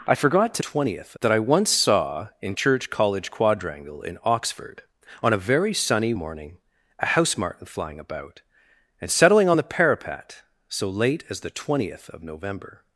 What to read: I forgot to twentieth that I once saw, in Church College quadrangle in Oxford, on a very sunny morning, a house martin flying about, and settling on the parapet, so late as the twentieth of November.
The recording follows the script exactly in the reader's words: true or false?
true